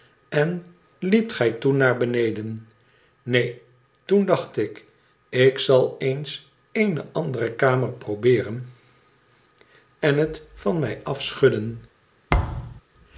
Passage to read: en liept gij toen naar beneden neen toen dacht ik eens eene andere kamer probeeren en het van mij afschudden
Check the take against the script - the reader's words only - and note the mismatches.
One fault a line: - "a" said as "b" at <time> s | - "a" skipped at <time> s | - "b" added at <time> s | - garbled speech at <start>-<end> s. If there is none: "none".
- "ik zal" added at 5.3 s